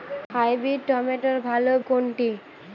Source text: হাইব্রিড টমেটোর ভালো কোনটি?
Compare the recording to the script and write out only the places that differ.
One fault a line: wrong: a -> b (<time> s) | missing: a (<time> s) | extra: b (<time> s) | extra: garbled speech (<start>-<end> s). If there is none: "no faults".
no faults